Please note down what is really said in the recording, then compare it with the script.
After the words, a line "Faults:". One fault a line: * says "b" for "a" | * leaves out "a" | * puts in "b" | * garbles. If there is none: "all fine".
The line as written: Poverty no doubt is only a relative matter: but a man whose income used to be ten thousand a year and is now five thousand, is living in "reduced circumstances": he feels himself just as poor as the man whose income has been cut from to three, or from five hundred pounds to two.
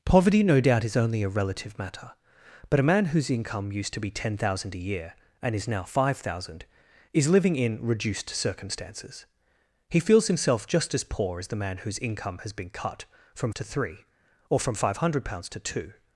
Poverty no doubt is only a relative matter: but a man whose income used to be ten thousand a year and is now five thousand, is living in "reduced circumstances": he feels himself just as poor as the man whose income has been cut from to three, or from five hundred pounds to two.
Faults:
all fine